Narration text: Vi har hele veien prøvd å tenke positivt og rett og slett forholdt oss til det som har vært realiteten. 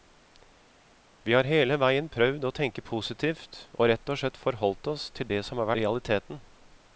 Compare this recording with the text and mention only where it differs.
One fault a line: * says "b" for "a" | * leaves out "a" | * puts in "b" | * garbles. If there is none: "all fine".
* leaves out "vært"